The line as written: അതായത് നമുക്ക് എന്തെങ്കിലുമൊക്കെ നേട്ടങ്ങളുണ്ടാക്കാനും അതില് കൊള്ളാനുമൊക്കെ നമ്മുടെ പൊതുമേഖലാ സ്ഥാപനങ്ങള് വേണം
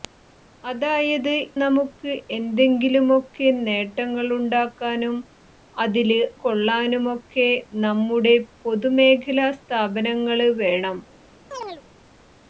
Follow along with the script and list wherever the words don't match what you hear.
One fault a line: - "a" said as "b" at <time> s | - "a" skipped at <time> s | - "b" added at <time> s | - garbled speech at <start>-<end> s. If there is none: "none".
none